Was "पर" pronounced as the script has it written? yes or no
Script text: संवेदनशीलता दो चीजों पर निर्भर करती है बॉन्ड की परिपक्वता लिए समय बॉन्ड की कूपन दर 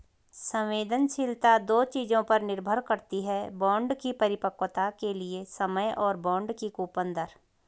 yes